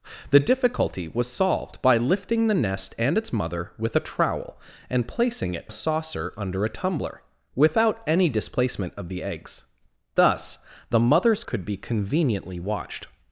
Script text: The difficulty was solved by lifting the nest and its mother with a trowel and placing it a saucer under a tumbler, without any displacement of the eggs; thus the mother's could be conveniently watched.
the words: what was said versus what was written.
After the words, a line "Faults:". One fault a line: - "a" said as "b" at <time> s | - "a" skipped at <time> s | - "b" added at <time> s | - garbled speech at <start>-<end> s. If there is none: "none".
The difficulty was solved by lifting the nest and its mother with a trowel and placing it a saucer under a tumbler, without any displacement of the eggs; thus the mother's could be conveniently watched.
Faults:
none